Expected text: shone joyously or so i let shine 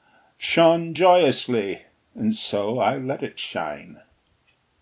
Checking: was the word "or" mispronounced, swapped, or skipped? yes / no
yes